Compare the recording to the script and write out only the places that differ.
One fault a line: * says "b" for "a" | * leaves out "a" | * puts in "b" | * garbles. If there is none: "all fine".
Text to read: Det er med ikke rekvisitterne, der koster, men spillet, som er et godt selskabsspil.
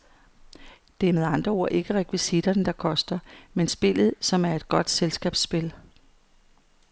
* puts in "andre ord"